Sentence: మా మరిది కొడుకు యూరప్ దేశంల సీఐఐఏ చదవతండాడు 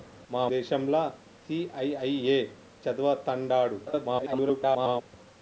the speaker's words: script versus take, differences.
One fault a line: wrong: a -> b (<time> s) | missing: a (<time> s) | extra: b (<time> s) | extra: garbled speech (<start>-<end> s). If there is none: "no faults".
missing: మరిది కొడుకు యూరప్ (0.5 s)
extra: garbled speech (3.9-5.0 s)